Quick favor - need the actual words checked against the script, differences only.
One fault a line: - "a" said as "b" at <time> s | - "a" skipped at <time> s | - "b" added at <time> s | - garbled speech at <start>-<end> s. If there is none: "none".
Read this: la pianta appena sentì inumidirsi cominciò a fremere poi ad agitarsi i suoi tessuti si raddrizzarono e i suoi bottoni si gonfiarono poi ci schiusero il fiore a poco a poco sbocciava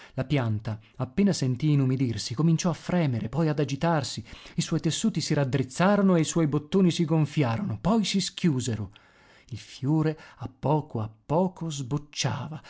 - "ci" said as "si" at 8.0 s